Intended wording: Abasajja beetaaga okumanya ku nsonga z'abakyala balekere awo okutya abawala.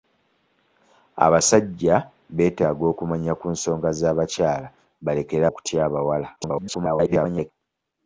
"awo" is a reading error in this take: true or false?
true